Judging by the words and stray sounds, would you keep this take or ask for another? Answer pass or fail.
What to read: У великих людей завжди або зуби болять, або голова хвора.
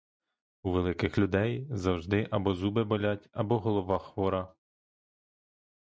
pass